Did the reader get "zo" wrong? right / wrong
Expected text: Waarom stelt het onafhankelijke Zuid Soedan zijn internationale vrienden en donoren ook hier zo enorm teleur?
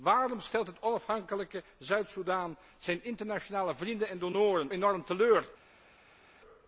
wrong